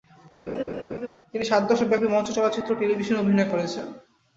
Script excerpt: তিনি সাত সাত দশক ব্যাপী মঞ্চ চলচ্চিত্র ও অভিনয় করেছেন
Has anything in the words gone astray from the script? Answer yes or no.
yes